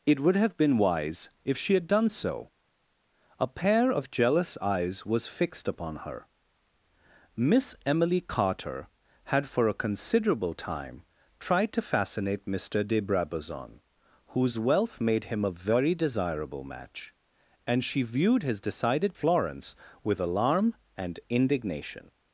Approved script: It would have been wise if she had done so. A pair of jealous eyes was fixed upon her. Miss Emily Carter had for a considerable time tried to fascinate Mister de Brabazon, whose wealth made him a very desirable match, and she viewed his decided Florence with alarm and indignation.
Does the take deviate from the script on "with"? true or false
false